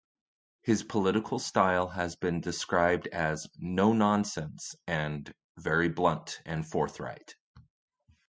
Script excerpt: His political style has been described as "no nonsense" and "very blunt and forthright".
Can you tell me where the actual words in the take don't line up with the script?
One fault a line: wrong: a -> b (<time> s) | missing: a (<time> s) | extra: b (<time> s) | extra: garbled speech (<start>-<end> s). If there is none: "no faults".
no faults